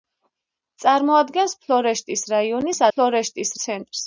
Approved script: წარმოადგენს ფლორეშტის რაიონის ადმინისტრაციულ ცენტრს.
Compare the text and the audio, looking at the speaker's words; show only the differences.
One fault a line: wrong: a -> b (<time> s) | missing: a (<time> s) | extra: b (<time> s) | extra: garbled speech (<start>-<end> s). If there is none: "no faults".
wrong: ადმინისტრაციულ -> ფლორეშტის (2.9 s)